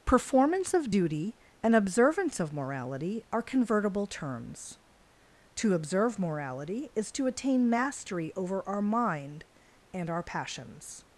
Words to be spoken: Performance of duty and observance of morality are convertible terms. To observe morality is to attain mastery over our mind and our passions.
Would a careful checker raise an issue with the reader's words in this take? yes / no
no